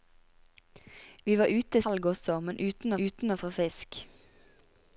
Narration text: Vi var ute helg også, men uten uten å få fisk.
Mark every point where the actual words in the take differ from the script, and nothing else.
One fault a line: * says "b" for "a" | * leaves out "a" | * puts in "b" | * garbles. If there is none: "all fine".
all fine